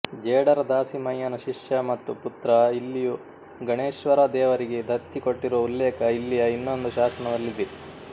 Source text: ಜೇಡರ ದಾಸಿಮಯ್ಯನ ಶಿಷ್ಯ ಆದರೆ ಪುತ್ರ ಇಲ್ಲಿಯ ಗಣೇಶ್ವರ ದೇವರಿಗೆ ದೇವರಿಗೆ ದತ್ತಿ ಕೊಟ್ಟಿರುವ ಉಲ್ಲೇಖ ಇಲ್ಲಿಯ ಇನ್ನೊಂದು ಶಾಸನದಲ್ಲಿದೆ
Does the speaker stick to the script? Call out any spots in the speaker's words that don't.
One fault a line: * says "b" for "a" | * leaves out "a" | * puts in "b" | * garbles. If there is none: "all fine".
* says "ಮತ್ತು" for "ಆದರೆ"
* leaves out "ದೇವರಿಗೆ"